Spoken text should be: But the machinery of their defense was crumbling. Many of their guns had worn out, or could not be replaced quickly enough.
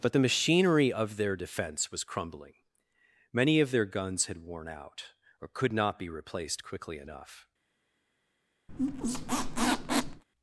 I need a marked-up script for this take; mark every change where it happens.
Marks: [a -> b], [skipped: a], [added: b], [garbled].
But the machinery of their defense was crumbling. Many of their guns had worn out, or could not be replaced quickly enough.